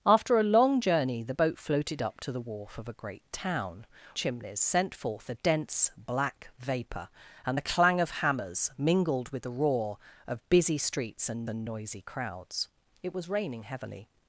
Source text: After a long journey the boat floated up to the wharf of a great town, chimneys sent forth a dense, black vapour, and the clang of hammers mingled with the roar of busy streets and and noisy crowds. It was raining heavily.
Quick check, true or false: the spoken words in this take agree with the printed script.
true